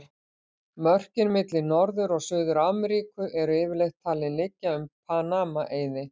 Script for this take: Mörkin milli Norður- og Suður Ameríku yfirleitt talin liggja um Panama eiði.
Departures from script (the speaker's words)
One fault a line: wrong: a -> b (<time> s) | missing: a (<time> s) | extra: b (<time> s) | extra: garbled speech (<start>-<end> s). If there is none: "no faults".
extra: eru (3.4 s)